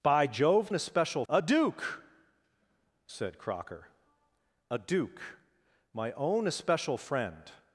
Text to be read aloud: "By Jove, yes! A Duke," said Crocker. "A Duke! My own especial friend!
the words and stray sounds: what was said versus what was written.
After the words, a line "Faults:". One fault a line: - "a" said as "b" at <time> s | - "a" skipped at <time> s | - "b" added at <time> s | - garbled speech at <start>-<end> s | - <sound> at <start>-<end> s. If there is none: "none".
"By Jove, especial! A Duke," said Crocker. "A Duke! My own especial friend!
Faults:
- "yes" said as "especial" at 0.7 s